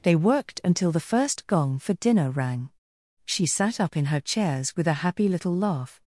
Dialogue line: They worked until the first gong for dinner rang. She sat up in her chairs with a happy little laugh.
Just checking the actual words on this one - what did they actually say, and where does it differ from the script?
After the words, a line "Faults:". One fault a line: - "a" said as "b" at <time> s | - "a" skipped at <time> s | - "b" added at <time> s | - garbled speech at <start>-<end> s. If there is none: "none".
They worked until the first gong for dinner rang. She sat up in her chairs with a happy little laugh.
Faults:
none